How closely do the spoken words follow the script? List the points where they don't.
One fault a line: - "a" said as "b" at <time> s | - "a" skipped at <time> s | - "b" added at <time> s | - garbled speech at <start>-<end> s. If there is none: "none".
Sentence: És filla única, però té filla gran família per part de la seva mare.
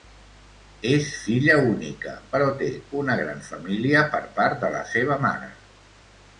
- "filla" said as "una" at 3.0 s